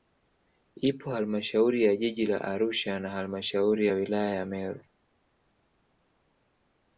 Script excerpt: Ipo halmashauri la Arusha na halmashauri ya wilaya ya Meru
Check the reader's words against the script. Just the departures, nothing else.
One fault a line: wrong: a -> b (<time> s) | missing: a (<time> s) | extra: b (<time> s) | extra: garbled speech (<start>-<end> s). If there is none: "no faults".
extra: ya jiji (1.8 s)